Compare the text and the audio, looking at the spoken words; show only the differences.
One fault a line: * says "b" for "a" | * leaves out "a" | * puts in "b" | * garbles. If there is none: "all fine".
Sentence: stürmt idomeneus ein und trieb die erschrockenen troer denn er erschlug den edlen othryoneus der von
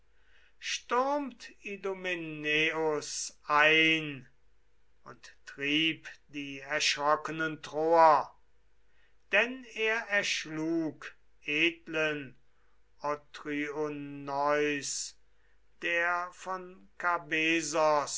* leaves out "den"